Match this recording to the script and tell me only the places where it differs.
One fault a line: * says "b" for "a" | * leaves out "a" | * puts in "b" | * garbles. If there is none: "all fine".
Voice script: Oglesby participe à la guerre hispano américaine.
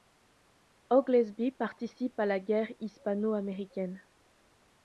all fine